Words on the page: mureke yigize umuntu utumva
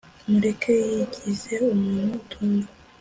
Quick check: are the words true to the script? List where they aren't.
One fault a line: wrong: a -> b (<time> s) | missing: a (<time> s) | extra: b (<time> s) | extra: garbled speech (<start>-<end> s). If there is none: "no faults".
no faults